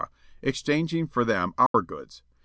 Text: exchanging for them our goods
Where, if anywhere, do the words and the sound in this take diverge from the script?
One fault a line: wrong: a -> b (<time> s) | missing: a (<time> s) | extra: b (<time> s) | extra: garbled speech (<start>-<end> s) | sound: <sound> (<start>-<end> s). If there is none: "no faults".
sound: dropout (1.7-1.7 s)